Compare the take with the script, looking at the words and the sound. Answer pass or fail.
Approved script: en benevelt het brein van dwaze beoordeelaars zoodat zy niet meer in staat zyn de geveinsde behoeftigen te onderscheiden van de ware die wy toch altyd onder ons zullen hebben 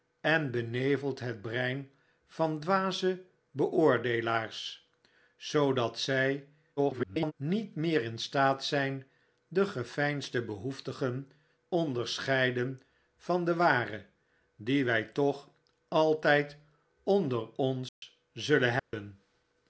fail